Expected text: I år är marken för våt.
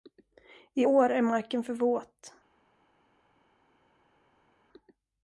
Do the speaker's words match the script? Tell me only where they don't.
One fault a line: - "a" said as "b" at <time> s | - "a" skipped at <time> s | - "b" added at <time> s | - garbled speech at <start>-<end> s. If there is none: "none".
none